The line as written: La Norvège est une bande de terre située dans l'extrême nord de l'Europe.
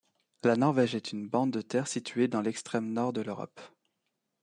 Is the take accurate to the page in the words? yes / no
yes